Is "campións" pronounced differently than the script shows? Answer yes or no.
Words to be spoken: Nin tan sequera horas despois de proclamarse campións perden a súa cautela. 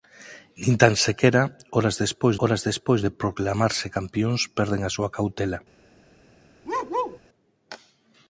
no